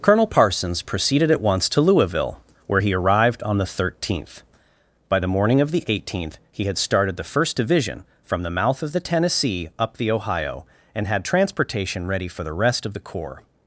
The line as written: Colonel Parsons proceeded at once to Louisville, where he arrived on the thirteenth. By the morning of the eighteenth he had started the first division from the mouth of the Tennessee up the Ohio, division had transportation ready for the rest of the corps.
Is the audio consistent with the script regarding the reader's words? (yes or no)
no